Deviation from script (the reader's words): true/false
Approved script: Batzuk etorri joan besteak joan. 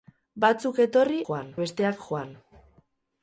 false